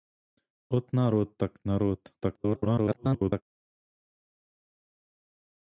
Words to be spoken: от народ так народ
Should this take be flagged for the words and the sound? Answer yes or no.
yes